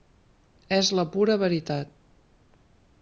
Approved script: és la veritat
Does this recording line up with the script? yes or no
no